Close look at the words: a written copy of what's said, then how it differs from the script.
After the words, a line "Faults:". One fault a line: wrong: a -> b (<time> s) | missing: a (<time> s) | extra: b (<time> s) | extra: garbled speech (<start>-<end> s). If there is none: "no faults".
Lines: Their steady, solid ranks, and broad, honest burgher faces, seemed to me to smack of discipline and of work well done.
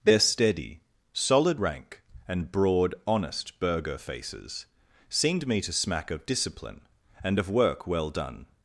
Their steady, solid rank, and broad, honest burgher faces, seemed me to smack of discipline and of work well done.
Faults:
wrong: ranks -> rank (1.6 s)
missing: to (5.5 s)